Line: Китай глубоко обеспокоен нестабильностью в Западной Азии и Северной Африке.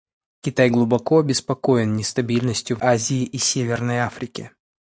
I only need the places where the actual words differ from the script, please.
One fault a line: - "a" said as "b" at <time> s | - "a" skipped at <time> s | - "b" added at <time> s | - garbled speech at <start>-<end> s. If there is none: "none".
- "Западной" skipped at 2.8 s